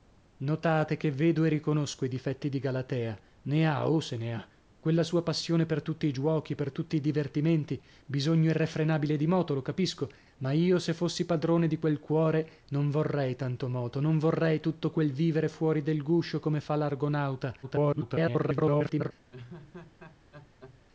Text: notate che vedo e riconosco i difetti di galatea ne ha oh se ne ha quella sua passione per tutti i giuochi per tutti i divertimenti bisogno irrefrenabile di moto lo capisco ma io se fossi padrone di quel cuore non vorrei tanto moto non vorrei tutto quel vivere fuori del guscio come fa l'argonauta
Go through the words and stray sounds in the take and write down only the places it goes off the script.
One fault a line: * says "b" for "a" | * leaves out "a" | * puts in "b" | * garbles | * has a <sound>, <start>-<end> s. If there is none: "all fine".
* garbles
* has a laugh, 19.3-20.8 s